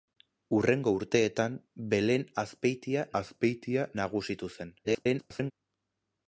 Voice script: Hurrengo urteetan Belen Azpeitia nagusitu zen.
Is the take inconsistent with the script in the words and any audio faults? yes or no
yes